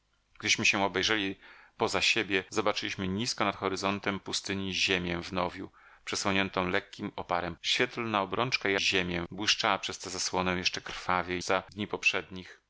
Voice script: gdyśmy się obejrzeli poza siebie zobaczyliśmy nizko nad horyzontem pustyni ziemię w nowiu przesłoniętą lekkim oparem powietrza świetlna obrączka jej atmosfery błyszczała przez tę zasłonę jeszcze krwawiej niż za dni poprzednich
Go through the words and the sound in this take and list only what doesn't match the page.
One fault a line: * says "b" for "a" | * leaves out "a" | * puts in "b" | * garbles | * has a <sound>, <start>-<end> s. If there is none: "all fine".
* leaves out "powietrza"
* says "ziemię" for "atmosfery"
* leaves out "niż"